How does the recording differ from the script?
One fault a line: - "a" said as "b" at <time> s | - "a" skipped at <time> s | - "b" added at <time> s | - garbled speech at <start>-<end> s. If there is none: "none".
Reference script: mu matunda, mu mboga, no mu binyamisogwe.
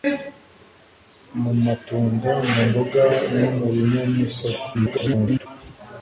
- garbled speech at 4.7-5.5 s